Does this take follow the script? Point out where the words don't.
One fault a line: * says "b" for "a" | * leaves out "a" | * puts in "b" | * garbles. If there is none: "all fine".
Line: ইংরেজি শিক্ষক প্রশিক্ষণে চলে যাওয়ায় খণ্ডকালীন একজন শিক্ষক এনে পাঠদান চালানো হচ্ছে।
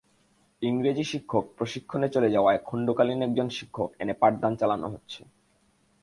all fine